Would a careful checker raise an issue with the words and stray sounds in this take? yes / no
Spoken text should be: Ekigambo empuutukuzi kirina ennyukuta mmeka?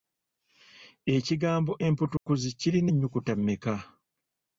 yes